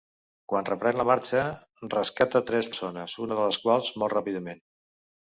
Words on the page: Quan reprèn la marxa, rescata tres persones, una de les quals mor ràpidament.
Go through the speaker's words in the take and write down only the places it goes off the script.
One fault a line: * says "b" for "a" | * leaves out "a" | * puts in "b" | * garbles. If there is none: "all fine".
all fine